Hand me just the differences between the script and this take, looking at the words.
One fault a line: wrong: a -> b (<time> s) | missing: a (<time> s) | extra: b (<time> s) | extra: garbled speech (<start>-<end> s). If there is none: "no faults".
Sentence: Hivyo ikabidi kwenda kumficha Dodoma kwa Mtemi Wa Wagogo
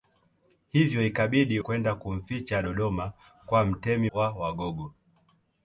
no faults